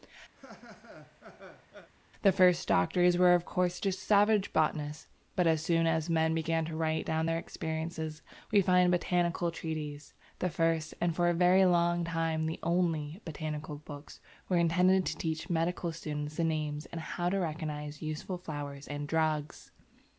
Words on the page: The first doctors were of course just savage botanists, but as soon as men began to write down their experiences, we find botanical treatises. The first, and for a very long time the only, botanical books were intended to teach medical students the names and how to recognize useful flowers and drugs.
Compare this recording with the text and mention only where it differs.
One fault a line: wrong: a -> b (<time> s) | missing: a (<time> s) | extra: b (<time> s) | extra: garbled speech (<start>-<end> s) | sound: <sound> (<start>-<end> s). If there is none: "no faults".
sound: laugh (0.3-1.9 s)